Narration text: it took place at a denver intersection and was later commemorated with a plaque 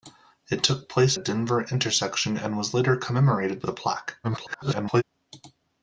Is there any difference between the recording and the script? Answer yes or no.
yes